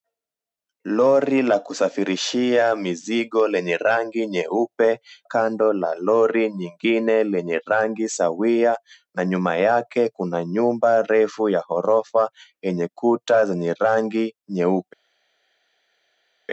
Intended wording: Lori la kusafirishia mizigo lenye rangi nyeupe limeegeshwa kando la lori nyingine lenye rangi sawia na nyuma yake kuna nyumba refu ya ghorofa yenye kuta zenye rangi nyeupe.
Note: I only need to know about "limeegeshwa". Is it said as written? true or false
false